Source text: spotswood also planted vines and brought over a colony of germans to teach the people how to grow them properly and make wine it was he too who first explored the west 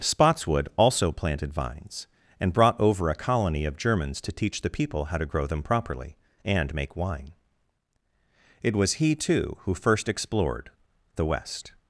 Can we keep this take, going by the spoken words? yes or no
yes